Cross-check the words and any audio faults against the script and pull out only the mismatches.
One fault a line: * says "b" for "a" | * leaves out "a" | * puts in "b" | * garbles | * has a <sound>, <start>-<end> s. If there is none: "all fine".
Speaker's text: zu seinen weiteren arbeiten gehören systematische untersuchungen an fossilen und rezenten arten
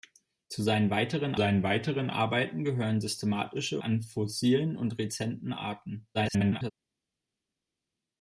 * puts in "seinen weiteren"
* leaves out "untersuchungen"
* garbles